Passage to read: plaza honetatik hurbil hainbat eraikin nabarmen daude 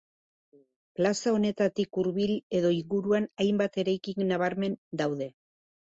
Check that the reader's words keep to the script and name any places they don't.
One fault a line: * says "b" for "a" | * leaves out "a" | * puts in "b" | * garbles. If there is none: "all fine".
* puts in "edo inguruan"